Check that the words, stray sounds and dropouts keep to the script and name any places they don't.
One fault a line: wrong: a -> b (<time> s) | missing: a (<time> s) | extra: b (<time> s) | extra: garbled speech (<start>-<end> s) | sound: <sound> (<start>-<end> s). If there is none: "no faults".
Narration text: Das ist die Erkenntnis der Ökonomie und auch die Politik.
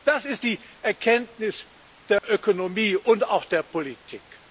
sound: dropout (2.2-2.2 s)
wrong: die -> der (3.4 s)